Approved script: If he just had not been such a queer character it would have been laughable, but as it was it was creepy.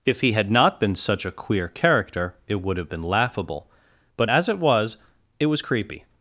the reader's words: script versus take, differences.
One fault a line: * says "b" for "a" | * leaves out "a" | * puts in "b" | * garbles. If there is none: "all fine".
* leaves out "just"